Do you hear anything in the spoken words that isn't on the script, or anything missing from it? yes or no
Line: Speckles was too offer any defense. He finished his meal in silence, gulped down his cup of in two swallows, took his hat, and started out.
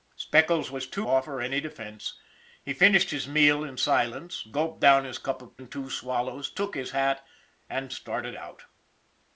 no